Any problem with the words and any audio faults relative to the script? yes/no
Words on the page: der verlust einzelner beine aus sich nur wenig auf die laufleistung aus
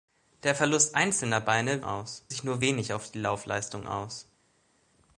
no